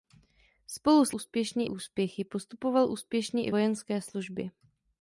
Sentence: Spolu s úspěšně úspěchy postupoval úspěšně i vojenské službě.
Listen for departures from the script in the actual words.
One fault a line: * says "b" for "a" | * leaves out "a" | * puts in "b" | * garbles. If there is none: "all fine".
all fine